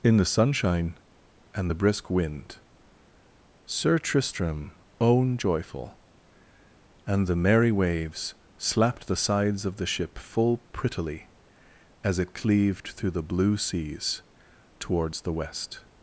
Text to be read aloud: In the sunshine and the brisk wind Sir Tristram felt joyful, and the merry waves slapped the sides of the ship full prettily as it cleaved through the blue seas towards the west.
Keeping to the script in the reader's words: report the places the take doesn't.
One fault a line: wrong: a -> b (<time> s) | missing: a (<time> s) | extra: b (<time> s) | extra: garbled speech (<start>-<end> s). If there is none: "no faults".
wrong: felt -> own (5.0 s)